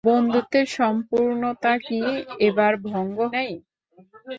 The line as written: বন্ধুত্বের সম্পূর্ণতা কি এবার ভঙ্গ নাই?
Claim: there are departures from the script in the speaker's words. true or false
false